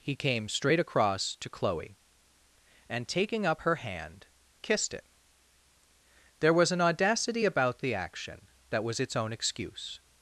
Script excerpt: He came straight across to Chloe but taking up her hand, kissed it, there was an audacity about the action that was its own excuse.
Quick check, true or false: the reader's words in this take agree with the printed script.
false